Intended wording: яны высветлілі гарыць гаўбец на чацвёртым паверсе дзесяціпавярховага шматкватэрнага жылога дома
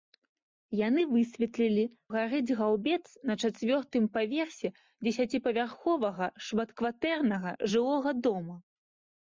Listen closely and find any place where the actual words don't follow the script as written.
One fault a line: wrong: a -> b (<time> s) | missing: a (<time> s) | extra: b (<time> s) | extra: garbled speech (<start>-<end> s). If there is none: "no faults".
no faults